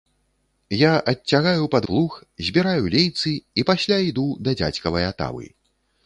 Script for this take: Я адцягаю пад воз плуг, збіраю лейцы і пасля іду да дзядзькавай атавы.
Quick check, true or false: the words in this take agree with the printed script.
false